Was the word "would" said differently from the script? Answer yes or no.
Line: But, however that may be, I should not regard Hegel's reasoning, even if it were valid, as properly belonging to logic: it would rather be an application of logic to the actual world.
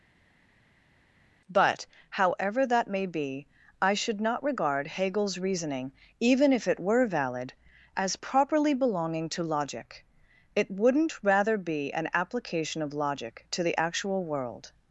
yes